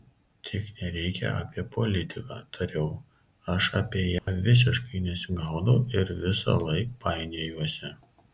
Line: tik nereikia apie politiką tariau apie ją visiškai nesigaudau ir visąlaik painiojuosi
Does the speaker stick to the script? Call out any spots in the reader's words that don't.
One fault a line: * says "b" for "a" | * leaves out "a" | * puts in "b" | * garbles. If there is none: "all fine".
* puts in "aš"